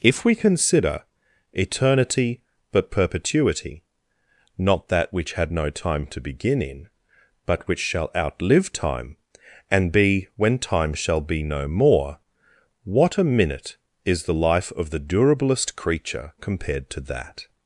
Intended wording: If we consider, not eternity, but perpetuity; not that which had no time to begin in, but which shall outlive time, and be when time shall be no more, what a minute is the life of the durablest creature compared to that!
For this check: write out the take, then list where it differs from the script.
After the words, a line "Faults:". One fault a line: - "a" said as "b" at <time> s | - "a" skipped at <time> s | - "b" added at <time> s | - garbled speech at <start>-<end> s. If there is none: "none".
If we consider, eternity, but perpetuity; not that which had no time to begin in, but which shall outlive time, and be when time shall be no more, what a minute is the life of the durablest creature compared to that!
Faults:
- "not" skipped at 1.0 s